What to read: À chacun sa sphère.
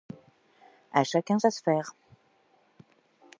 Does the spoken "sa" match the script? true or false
true